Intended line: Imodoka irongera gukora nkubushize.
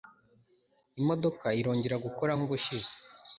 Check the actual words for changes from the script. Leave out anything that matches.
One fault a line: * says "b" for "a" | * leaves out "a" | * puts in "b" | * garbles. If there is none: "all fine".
all fine